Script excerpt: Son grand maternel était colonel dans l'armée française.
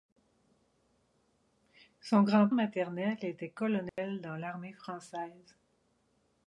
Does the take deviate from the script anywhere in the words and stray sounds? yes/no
yes